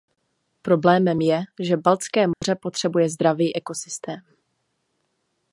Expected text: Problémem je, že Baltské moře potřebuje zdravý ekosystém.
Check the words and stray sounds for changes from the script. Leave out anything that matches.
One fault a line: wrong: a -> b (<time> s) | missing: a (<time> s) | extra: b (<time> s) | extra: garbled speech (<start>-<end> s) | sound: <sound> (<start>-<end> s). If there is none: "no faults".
sound: dropout (2.3-2.4 s)